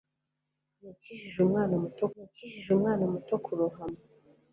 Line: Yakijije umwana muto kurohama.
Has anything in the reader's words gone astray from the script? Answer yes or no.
yes